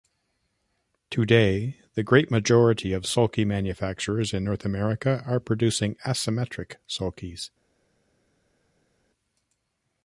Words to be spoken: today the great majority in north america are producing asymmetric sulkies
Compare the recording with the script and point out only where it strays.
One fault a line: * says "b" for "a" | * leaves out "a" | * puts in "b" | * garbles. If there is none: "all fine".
* puts in "of sulky manufacturers"